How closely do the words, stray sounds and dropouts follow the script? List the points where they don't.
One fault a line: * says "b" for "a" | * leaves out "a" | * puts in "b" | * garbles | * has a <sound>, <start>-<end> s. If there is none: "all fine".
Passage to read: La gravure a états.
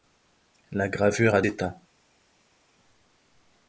all fine